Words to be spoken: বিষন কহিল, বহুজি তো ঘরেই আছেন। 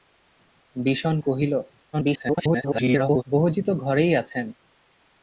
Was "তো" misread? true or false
false